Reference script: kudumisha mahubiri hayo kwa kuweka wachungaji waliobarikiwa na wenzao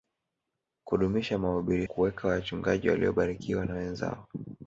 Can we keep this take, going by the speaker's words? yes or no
no